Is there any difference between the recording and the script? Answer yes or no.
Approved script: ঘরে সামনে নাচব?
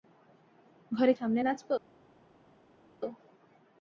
no